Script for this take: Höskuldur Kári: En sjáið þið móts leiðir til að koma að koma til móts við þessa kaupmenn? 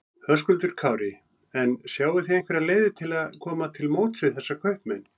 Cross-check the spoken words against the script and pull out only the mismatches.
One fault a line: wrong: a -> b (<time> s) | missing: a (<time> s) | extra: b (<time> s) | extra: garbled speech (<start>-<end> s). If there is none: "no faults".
wrong: móts -> einhverjar (2.4 s)
missing: að koma (3.7 s)